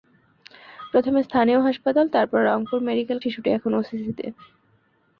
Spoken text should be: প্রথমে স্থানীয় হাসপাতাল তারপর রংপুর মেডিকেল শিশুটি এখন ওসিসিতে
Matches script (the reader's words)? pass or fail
pass